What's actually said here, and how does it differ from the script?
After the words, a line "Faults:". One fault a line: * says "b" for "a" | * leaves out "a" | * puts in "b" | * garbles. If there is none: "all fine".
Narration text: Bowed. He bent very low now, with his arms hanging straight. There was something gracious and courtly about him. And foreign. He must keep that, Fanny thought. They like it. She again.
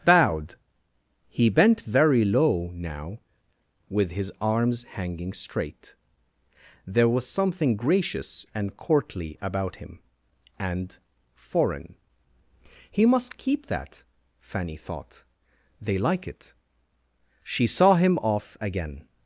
Bowed. He bent very low now, with his arms hanging straight. There was something gracious and courtly about him. And foreign. He must keep that, Fanny thought. They like it. She saw him off again.
Faults:
* puts in "saw him off"